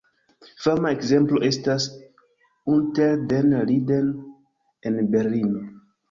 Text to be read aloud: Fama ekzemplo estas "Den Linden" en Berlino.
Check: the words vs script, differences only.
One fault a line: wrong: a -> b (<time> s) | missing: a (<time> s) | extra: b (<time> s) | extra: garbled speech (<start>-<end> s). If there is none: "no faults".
extra: Unter (2.8 s)